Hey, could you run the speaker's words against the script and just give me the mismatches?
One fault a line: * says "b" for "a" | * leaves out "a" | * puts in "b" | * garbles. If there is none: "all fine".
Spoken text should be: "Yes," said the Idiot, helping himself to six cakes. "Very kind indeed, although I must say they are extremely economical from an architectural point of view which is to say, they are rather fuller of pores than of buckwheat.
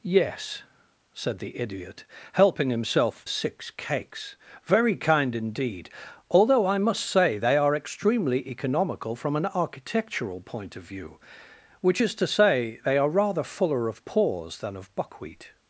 * leaves out "to"